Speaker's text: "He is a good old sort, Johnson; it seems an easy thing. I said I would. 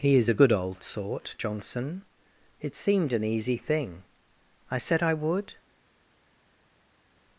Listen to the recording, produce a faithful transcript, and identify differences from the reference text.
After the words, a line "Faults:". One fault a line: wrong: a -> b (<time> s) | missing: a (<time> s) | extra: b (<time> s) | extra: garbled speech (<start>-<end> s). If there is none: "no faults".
"He is a good old sort, Johnson; it seemed an easy thing. I said I would.
Faults:
wrong: seems -> seemed (2.7 s)